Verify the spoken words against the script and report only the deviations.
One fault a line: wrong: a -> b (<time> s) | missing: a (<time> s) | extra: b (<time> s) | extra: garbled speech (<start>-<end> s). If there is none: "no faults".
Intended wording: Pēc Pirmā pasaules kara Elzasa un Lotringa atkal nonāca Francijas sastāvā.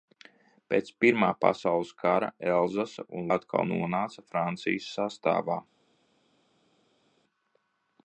missing: Lotringa (3.3 s)